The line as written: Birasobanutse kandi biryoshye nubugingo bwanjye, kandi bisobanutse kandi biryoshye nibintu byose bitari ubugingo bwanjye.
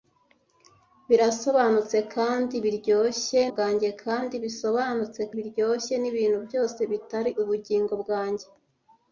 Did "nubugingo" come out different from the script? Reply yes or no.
yes